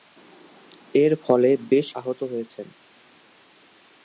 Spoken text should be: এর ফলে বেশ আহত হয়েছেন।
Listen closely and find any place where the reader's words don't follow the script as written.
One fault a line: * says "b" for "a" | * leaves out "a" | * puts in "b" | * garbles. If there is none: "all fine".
all fine